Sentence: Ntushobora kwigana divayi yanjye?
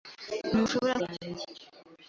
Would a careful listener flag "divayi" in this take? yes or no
yes